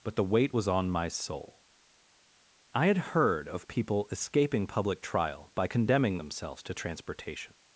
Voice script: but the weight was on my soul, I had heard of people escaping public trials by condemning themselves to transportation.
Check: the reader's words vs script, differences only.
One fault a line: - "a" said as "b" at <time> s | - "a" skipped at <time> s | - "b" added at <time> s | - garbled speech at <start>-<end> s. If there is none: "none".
- "trials" said as "trial" at 5.0 s